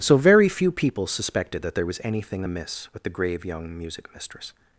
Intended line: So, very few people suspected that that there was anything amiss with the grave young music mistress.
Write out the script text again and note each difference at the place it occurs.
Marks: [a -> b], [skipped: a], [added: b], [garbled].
So, very few people suspected that [skipped: that] there was anything amiss with the grave young music mistress.